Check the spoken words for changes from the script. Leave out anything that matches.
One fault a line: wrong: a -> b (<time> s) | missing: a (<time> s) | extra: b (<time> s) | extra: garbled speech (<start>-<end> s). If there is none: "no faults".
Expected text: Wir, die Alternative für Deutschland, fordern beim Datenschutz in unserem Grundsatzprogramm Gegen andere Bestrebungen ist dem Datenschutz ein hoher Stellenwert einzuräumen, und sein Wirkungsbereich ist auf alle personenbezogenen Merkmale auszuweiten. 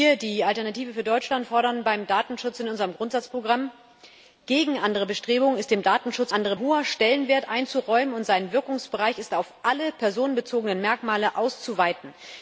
wrong: ein -> andere (6.3 s)